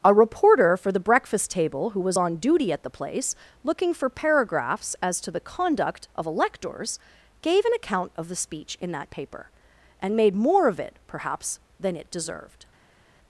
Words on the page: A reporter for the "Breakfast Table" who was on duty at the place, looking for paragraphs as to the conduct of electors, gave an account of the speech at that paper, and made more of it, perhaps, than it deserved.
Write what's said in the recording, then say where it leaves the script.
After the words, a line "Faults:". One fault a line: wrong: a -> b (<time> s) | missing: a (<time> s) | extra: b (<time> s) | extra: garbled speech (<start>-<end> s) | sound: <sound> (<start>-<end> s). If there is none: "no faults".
A reporter for the "Breakfast Table" who was on duty at the place, looking for paragraphs as to the conduct of electors, gave an account of the speech in that paper, and made more of it, perhaps, than it deserved.
Faults:
wrong: at -> in (8.8 s)